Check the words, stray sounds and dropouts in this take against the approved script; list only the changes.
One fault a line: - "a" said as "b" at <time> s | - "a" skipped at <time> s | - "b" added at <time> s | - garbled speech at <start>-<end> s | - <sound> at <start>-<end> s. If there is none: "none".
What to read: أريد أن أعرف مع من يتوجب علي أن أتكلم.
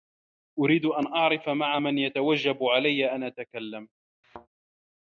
- thud at 4.2-4.5 s